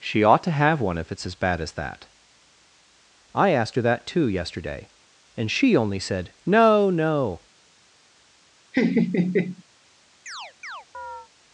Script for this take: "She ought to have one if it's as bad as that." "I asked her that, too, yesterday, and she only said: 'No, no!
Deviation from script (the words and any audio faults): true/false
true